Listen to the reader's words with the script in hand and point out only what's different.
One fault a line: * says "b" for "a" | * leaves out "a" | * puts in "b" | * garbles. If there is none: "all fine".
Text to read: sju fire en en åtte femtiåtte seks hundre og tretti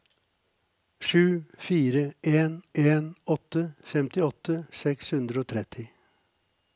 all fine